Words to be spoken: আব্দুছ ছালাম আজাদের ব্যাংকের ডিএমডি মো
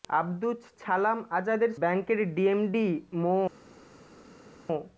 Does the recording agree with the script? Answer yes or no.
yes